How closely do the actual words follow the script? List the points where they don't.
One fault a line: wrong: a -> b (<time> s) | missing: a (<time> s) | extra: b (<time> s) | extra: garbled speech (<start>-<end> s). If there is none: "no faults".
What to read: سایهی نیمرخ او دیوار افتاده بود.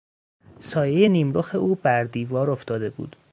extra: بر (1.7 s)